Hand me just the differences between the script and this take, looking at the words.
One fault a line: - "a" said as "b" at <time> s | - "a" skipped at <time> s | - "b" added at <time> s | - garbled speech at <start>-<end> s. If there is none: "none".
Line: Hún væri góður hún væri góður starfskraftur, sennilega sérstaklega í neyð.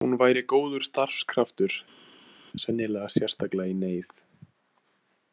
- "hún væri góður" skipped at 0.8 s